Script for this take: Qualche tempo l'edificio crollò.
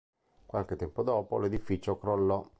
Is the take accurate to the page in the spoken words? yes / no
no